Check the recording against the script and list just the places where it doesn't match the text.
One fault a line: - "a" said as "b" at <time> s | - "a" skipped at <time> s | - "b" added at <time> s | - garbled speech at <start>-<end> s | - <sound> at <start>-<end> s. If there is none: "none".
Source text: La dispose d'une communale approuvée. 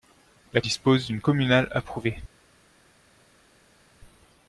none